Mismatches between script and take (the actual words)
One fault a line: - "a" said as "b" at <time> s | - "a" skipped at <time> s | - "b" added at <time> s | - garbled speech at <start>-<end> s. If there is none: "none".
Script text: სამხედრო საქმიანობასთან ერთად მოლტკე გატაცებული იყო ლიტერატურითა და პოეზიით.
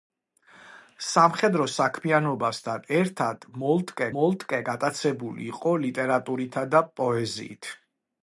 - "მოლტკე" added at 4.2 s